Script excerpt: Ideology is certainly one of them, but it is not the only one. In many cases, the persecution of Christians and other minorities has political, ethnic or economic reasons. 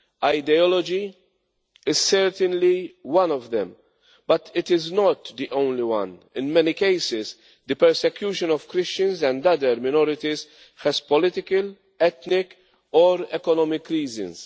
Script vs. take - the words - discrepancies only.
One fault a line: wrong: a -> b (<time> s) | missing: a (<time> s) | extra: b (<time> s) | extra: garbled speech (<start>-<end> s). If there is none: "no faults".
no faults